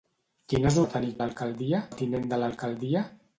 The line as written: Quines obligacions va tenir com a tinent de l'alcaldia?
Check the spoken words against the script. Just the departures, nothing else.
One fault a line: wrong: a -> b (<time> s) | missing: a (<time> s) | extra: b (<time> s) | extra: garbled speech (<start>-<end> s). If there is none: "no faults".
missing: obligacions (0.8 s)
wrong: com -> l'alcaldia (1.2 s)